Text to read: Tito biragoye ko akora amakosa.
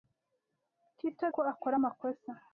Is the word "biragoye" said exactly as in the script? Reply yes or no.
no